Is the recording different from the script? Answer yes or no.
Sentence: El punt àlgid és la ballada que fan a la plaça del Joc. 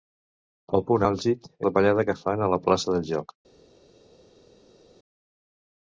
yes